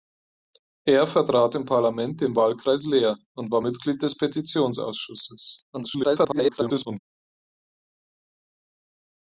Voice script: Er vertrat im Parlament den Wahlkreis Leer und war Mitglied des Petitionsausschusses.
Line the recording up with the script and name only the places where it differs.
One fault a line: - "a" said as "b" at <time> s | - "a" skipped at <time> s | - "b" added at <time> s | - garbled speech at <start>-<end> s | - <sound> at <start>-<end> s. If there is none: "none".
- garbled speech at 5.7-7.0 s